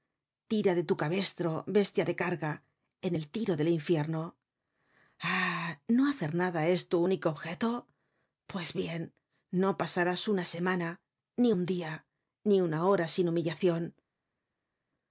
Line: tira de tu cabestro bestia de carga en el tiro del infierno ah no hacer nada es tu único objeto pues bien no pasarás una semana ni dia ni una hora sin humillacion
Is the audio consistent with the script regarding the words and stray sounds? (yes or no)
no